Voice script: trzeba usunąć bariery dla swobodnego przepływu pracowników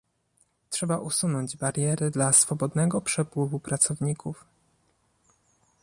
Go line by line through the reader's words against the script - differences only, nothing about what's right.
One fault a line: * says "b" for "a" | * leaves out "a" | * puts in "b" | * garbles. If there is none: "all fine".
all fine